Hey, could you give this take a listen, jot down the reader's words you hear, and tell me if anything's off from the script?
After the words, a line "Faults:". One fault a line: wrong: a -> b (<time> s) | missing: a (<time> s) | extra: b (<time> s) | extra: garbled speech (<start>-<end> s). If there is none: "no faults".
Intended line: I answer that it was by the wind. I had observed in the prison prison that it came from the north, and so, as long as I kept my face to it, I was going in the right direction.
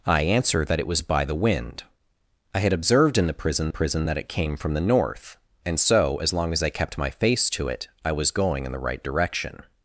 I answer that it was by the wind. I had observed in the prison prison that it came from the north, and so, as long as I kept my face to it, I was going in the right direction.
Faults:
no faults